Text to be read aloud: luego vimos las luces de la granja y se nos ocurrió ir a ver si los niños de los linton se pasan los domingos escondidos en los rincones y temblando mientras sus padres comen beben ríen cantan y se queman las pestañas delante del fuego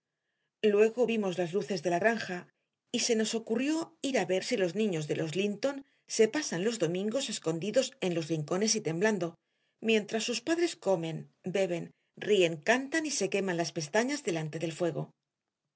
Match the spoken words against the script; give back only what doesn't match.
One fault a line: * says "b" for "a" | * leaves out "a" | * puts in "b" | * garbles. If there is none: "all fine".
all fine